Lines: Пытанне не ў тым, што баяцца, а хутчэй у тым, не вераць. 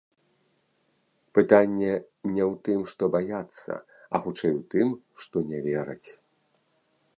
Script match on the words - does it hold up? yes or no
no